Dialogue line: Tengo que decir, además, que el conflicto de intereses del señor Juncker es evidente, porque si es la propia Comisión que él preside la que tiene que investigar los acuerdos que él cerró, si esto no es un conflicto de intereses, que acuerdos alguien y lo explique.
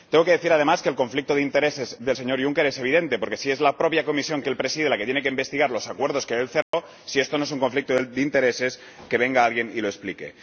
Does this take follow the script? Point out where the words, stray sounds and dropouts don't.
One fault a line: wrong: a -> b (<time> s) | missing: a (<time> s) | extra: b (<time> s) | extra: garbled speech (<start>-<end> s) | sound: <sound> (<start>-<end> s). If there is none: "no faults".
sound: dropout (6.6-6.7 s)
wrong: acuerdos -> venga (9.2 s)